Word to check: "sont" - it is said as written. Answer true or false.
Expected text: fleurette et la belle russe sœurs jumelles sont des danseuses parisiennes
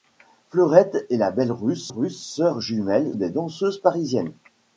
false